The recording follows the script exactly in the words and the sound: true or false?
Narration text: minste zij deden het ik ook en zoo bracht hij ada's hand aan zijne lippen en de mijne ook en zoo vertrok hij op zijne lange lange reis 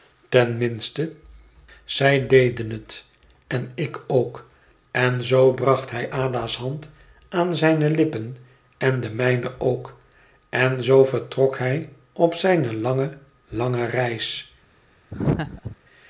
false